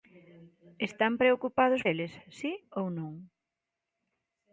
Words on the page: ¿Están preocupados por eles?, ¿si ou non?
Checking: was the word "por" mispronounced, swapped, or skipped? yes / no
yes